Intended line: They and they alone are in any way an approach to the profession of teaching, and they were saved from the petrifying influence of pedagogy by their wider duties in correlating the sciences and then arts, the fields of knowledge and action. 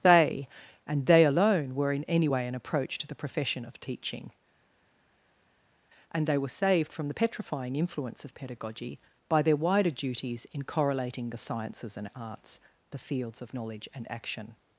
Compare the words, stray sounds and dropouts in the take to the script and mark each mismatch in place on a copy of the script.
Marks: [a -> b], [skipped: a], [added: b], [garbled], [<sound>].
They and they alone [are -> were] in any way an approach to the profession of teaching, and they were saved from the petrifying influence of pedagogy by their wider duties in correlating the sciences and [skipped: then] arts, the fields of knowledge and action.